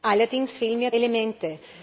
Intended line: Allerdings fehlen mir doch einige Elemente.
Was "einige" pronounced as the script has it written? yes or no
no